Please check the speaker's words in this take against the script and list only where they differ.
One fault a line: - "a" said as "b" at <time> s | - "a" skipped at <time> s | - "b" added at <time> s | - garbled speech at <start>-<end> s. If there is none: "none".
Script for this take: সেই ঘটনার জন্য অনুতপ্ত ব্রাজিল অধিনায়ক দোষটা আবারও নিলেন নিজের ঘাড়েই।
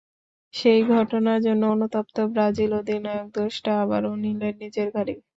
none